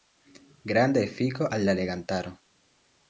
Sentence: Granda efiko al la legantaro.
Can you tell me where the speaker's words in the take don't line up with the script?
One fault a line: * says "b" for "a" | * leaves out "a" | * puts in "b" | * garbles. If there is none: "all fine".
all fine